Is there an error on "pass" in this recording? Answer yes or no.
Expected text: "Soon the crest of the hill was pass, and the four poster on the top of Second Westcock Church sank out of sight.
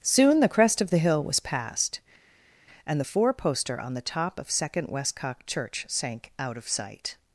yes